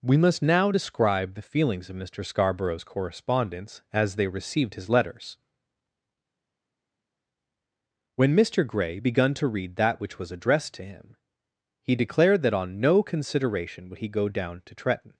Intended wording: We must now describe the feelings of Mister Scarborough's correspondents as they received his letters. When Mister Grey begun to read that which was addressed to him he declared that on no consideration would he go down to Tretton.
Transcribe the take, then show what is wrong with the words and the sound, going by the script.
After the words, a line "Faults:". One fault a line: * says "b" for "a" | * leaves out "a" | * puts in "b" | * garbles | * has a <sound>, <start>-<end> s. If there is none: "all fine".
We must now describe the feelings of Mister Scarborough's correspondents as they received his letters. When Mister Grey begun to read that which was addressed to him he declared that on no consideration would he go down to Tretton.
Faults:
all fine